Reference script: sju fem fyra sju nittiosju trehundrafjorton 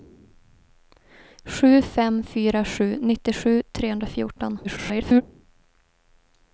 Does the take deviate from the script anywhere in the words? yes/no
yes